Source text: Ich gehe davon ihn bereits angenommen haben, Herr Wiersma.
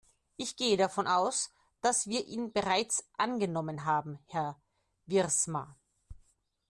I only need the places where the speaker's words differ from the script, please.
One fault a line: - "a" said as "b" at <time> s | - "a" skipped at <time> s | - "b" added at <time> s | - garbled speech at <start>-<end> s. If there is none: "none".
- "aus dass wir" added at 1.1 s